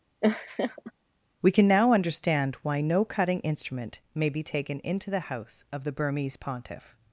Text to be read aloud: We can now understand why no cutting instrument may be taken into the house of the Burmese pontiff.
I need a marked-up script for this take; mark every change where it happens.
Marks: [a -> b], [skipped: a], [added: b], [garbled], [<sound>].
[laugh] We can now understand why no cutting instrument may be taken into the house of the Burmese pontiff.